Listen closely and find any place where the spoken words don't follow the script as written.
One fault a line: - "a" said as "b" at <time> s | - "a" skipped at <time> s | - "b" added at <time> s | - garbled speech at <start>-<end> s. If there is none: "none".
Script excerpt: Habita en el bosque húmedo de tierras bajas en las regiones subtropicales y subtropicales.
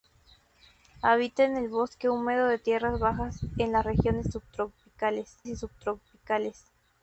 none